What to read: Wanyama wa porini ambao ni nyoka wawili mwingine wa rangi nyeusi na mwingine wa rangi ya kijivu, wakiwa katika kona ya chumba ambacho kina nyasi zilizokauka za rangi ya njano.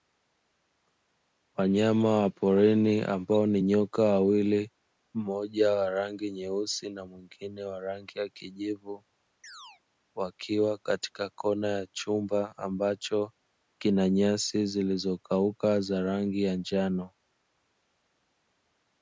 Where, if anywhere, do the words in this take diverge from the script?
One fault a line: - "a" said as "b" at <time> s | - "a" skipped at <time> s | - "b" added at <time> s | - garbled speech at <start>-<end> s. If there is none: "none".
- "mwingine" said as "mmoja" at 5.1 s